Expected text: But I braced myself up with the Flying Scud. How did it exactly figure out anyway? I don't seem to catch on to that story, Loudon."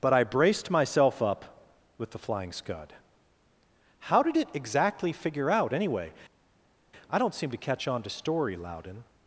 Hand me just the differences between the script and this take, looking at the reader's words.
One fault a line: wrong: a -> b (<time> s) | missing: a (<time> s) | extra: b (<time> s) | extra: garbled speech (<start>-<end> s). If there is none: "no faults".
missing: that (8.1 s)